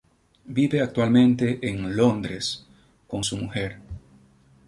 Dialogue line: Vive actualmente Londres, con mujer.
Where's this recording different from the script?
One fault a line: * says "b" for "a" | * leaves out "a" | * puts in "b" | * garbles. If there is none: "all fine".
* puts in "en"
* puts in "su"